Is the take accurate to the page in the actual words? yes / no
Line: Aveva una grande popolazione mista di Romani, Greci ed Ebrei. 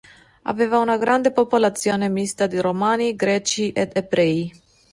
yes